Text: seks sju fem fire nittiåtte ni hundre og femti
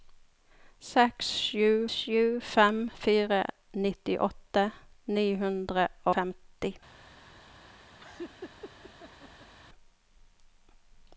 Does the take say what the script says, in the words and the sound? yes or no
no